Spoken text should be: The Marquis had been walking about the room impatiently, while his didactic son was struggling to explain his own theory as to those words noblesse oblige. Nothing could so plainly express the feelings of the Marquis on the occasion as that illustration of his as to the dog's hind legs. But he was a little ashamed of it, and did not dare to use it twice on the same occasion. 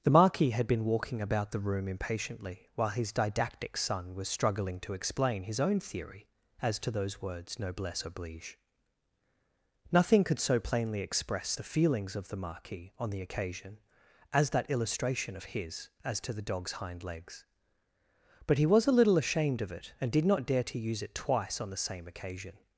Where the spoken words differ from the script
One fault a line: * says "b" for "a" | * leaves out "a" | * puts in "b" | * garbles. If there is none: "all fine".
all fine